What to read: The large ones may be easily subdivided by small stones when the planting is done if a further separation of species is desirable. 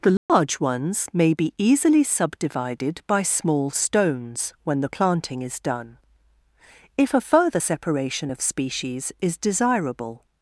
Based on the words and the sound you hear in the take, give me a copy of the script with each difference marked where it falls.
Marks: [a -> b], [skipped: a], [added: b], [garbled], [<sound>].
The large [dropout] ones may be easily subdivided by small stones when the planting is done if a further separation of species is desirable.